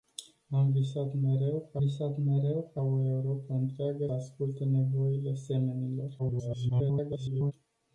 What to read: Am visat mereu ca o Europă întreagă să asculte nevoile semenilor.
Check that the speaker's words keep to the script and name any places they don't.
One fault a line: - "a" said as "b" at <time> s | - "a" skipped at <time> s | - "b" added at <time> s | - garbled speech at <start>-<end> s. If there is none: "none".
- "visat mereu ca" added at 1.8 s
- "să" skipped at 4.1 s
- garbled speech at 6.2-7.5 s